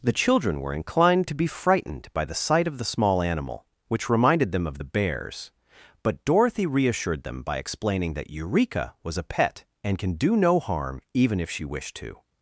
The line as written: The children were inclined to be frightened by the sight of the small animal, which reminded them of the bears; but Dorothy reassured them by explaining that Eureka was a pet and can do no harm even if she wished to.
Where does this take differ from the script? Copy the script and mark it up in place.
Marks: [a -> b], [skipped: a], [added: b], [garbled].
The children were inclined to be frightened by the sight of the small animal, which reminded them of the bears; but Dorothy reassured them by explaining that Eureka was a pet and can do no harm even if she wished to.